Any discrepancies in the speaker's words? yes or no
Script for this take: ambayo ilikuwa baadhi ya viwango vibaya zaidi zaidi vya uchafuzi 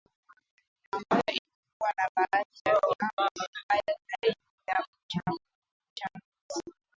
yes